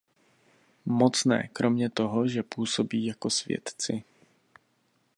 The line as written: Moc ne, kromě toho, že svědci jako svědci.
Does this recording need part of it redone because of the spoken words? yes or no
yes